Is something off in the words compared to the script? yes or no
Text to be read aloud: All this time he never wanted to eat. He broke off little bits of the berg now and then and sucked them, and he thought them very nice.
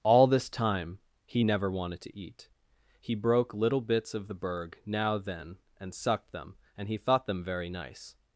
yes